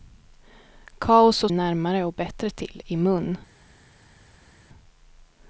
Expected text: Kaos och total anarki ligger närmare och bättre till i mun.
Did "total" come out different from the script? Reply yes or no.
yes